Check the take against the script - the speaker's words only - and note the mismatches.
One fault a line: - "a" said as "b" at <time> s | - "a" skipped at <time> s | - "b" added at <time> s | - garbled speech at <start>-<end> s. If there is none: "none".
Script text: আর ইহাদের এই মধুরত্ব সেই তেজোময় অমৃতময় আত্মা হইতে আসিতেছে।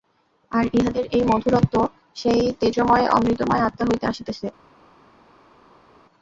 none